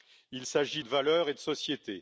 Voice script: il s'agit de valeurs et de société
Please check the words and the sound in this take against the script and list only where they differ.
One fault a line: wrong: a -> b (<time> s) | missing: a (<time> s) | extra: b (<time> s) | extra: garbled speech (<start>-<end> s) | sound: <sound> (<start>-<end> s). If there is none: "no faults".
no faults